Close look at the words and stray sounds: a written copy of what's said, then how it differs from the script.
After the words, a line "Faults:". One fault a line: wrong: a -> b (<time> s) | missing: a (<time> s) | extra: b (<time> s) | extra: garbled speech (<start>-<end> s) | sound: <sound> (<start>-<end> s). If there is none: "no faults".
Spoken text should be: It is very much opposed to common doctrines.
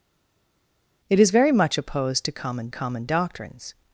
It is very much opposed to common common doctrines.
Faults:
extra: common (2.7 s)